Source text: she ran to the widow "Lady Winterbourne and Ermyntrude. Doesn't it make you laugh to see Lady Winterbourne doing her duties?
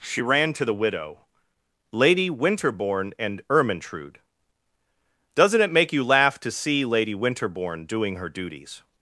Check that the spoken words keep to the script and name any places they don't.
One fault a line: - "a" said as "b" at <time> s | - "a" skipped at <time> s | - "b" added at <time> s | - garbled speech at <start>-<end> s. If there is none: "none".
none